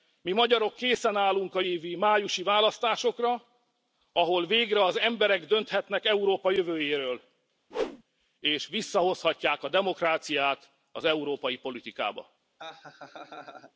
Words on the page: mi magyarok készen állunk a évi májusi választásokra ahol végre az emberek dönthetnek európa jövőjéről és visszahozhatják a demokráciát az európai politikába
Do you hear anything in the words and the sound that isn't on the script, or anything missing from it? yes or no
yes